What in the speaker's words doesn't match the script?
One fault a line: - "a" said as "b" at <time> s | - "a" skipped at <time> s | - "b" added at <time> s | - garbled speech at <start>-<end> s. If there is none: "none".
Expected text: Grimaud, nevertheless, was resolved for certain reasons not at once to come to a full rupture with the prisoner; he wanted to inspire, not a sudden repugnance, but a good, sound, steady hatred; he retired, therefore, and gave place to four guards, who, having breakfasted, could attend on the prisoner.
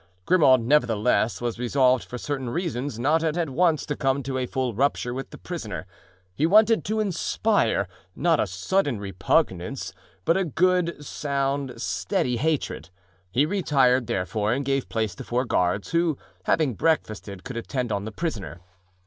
- "at" added at 3.4 s